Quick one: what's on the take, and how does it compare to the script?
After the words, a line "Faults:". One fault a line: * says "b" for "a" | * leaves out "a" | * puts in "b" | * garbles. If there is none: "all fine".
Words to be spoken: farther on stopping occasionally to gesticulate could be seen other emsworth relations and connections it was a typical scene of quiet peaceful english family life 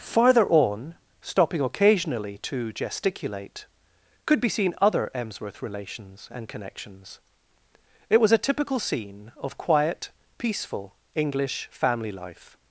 farther on stopping occasionally to gesticulate could be seen other emsworth relations and connections it was a typical scene of quiet peaceful english family life
Faults:
all fine